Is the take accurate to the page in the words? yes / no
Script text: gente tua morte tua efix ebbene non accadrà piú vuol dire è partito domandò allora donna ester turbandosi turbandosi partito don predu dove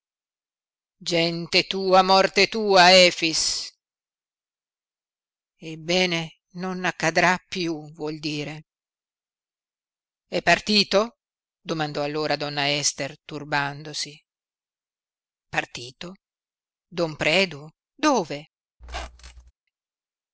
no